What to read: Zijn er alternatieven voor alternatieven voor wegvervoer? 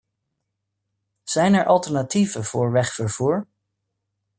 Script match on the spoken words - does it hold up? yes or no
no